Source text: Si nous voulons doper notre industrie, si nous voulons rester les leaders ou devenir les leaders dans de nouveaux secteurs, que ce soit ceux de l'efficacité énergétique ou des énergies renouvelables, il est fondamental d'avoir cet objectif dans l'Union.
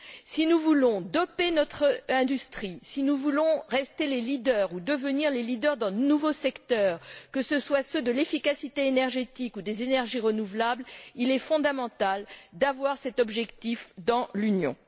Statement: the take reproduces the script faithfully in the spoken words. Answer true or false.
true